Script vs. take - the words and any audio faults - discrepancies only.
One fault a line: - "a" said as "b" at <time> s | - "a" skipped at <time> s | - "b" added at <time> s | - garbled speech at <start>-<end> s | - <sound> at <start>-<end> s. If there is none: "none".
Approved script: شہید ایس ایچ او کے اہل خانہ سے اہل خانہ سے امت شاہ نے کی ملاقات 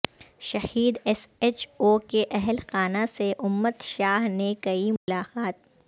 - "اہل خانہ سے" skipped at 3.3 s
- dropout at 5.0-5.1 s